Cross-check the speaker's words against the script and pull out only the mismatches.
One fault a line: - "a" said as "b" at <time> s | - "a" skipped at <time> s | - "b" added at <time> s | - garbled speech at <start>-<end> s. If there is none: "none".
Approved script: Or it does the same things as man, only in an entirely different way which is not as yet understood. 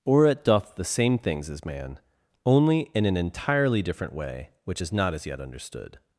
- "does" said as "doth" at 0.4 s